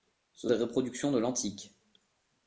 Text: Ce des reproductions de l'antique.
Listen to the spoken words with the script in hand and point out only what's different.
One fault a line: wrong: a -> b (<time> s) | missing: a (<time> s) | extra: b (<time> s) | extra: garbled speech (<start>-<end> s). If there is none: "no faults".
no faults